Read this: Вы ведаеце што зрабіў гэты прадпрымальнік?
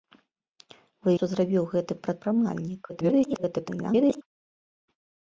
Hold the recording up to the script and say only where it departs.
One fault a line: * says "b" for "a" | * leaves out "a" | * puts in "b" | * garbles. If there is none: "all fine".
* leaves out "ведаеце"
* garbles